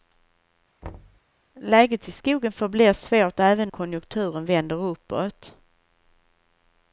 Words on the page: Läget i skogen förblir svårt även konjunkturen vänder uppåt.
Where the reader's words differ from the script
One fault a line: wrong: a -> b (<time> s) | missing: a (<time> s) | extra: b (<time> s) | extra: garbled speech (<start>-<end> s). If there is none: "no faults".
no faults